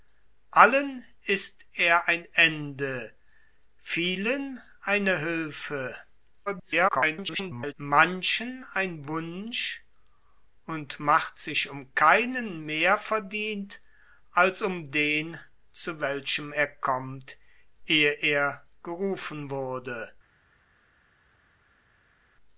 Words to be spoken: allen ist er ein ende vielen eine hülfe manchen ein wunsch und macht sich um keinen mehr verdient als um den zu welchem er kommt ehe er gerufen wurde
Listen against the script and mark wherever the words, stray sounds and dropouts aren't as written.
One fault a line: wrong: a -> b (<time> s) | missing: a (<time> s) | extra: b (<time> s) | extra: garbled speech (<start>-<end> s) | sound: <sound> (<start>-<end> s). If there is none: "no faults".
extra: garbled speech (6.5-7.7 s)